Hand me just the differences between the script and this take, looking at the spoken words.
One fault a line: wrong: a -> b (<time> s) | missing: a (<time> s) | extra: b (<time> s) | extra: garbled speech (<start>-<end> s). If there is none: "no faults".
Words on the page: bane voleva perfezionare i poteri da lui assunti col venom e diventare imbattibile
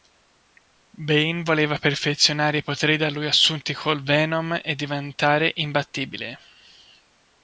no faults